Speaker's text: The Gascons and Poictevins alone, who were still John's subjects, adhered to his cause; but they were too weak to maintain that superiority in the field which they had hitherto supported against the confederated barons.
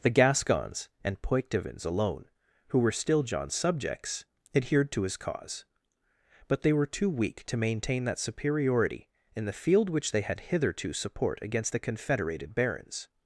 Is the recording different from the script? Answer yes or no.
yes